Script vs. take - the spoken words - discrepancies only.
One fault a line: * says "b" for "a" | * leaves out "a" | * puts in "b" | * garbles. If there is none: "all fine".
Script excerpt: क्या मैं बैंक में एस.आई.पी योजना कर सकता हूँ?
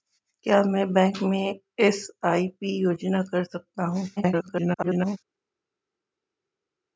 * garbles